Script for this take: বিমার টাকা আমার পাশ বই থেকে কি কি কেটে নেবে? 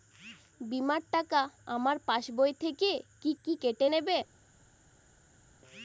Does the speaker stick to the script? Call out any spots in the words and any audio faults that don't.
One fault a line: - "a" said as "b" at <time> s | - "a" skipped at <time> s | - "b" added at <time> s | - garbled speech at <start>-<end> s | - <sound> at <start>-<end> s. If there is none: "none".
none